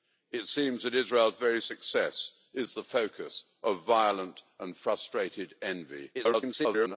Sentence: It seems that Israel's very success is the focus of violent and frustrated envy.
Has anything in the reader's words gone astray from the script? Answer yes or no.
yes